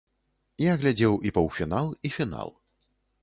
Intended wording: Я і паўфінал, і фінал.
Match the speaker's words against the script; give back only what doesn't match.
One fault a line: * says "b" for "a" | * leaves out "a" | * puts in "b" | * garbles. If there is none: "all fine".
* puts in "глядзеў"